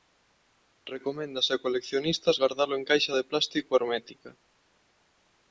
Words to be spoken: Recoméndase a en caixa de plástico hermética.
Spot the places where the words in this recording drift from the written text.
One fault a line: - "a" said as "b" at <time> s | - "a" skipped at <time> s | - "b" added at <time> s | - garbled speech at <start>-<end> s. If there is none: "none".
- "coleccionistas gardalo" added at 1.6 s